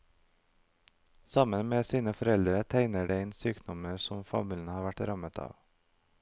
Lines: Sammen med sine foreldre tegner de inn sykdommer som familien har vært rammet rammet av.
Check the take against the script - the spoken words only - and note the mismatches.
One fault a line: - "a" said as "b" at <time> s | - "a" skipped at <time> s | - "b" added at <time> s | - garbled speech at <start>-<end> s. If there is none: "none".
- "rammet" skipped at 5.4 s